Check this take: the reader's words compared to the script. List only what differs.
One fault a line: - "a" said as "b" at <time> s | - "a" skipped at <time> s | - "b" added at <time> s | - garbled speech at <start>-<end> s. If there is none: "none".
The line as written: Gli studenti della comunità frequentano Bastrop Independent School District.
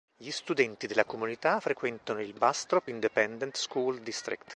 - "il" added at 2.2 s